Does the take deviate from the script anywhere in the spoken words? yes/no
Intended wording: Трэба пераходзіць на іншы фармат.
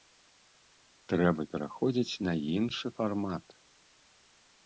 no